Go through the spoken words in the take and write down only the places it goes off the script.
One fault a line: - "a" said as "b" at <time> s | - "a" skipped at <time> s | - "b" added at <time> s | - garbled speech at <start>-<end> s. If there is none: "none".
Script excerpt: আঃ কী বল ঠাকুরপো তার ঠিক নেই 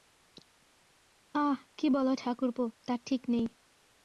none